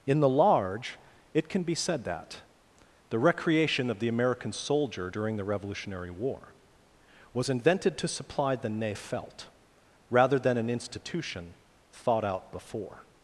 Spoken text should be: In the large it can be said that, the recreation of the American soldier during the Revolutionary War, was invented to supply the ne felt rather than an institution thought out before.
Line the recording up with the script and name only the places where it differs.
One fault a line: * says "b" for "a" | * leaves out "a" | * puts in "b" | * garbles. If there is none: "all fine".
all fine